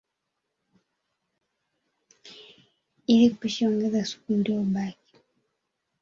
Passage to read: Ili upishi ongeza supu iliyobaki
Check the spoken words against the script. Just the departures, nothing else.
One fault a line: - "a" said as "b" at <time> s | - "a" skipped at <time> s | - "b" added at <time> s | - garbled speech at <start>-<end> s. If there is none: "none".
none